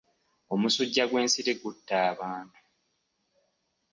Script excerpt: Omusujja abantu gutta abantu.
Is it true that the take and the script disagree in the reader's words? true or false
true